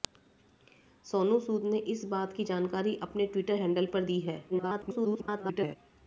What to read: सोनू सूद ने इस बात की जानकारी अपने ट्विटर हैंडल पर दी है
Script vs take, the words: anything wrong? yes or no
yes